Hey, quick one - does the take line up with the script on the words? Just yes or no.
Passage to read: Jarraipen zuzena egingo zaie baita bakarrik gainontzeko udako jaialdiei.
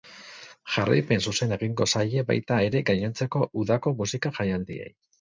no